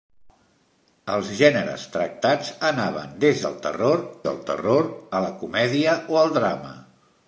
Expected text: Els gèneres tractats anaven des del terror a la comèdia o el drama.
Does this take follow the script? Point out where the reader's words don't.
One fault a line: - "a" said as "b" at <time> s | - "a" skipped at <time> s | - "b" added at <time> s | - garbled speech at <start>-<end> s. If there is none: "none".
- "del terror" added at 4.3 s